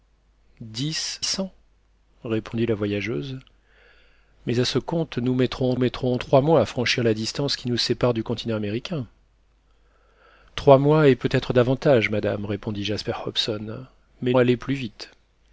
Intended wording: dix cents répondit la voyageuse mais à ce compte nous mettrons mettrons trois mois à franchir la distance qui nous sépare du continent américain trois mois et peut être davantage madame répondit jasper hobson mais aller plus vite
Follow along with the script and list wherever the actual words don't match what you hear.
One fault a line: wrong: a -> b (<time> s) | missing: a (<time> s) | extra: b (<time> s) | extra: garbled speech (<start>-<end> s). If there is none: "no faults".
no faults